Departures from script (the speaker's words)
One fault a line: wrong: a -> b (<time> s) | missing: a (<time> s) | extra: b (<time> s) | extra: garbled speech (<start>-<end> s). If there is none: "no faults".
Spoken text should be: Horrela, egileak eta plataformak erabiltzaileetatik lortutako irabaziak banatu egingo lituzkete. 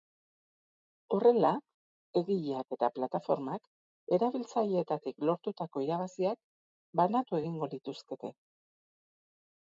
no faults